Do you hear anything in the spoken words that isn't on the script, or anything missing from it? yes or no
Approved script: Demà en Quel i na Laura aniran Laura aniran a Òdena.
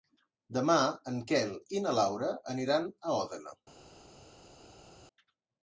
yes